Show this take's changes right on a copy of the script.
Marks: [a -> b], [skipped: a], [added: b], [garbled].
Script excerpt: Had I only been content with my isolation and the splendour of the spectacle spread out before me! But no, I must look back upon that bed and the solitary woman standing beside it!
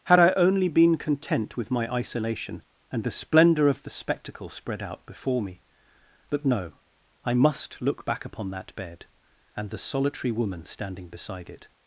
Had I only been content with my isolation and the splendour of the spectacle spread out before me! But no, I must look back upon that bed and the solitary woman standing beside it!